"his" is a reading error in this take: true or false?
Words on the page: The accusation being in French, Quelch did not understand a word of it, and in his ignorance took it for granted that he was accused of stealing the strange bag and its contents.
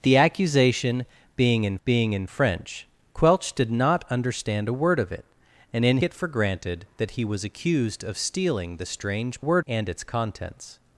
true